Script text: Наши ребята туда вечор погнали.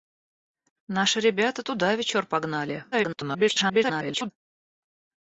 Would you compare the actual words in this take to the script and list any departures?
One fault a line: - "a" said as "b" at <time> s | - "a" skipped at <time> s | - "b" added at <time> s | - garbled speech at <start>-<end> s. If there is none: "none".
- garbled speech at 2.9-4.3 s